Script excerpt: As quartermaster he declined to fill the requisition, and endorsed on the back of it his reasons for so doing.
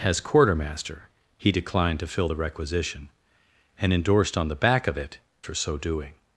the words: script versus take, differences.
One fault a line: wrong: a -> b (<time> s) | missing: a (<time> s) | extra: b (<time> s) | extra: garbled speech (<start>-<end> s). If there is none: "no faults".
missing: his reasons (5.2 s)